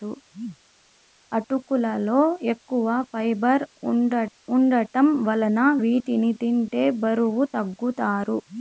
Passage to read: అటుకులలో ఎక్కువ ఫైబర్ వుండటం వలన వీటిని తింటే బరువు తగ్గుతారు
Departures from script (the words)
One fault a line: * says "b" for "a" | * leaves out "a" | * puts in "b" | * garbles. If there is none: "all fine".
all fine